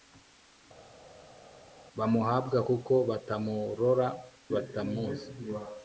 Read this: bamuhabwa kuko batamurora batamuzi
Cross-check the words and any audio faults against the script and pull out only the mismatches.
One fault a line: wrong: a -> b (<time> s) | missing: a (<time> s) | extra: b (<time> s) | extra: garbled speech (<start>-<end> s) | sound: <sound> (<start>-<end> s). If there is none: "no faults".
no faults